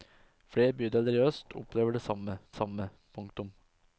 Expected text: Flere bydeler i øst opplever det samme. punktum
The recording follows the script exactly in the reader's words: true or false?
false